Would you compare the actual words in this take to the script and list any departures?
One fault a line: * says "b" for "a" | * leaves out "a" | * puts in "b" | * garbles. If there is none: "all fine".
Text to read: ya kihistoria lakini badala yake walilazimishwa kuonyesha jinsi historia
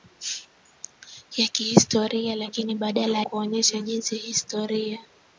* leaves out "yake walilazimishwa"